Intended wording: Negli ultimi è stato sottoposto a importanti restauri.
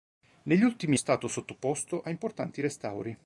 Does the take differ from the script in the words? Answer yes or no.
no